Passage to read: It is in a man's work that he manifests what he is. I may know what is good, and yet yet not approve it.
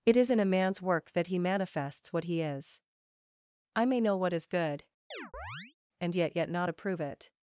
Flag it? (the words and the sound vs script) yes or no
yes